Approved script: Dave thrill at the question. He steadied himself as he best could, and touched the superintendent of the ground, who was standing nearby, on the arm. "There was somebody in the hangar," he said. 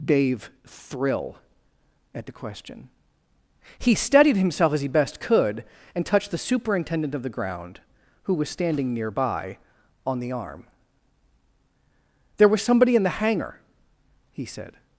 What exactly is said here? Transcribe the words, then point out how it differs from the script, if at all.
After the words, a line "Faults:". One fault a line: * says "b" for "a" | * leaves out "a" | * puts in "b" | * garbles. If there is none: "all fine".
Dave thrill at the question. He steadied himself as he best could, and touched the superintendent of the ground, who was standing nearby, on the arm. "There was somebody in the hangar," he said.
Faults:
all fine